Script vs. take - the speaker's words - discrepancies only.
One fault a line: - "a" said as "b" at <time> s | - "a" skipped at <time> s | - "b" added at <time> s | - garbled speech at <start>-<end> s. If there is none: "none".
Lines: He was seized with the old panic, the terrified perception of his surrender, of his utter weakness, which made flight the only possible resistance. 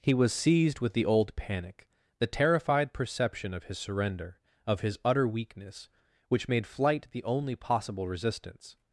none